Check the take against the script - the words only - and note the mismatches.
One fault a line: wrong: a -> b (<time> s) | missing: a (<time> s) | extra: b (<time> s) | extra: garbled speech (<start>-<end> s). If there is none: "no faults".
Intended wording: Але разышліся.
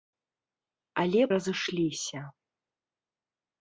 no faults